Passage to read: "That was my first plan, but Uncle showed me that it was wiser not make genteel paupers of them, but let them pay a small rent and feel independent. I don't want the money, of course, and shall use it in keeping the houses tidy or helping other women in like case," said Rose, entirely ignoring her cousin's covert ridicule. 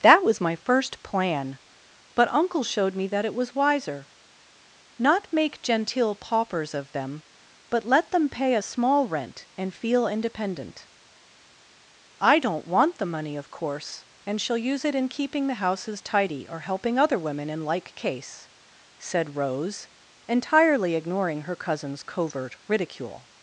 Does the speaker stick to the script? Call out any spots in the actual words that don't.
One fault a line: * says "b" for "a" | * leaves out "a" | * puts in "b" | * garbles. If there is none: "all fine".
all fine